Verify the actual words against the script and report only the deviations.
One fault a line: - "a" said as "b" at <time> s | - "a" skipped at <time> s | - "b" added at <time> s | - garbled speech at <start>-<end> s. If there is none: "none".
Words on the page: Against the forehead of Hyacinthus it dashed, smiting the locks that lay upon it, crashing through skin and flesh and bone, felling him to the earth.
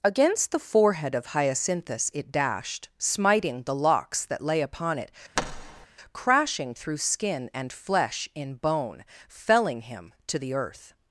- "and" said as "in" at 8.3 s